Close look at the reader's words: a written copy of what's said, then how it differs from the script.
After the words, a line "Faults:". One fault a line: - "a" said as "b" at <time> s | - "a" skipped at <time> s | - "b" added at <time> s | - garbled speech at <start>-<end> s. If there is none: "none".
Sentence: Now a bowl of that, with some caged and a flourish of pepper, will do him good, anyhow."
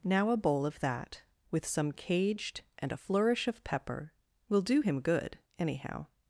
Now a bowl of that, with some caged and a flourish of pepper, will do him good, anyhow."
Faults:
none